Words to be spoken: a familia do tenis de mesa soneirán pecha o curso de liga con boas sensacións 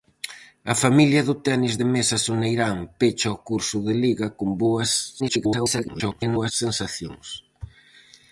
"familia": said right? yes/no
yes